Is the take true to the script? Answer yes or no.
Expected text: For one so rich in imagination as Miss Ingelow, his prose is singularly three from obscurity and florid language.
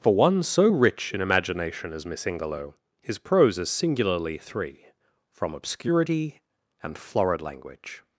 yes